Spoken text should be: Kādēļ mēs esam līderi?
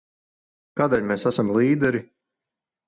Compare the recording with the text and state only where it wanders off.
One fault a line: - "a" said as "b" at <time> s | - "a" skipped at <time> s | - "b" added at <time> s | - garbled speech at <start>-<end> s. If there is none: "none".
none